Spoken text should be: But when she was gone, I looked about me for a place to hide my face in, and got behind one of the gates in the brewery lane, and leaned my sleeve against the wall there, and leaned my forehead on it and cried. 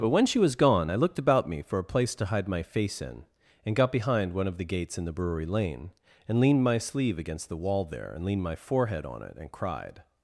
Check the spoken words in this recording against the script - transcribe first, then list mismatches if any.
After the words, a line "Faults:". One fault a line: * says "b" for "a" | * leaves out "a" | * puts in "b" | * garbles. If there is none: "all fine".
But when she was gone, I looked about me for a place to hide my face in, and got behind one of the gates in the brewery lane, and leaned my sleeve against the wall there, and leaned my forehead on it and cried.
Faults:
all fine